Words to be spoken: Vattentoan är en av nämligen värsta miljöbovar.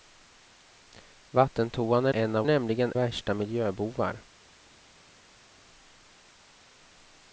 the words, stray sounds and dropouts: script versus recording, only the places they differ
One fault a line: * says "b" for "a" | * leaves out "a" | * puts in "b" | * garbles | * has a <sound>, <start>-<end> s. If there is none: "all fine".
all fine